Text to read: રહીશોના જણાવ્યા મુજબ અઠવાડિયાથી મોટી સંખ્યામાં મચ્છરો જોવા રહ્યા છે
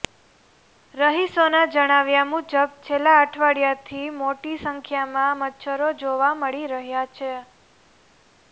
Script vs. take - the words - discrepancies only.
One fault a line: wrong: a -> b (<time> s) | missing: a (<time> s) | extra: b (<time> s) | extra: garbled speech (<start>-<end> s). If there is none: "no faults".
extra: છેલ્લા (2.9 s)
extra: મળી (6.4 s)